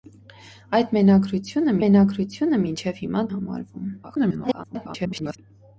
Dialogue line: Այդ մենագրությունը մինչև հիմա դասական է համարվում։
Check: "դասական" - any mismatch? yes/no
yes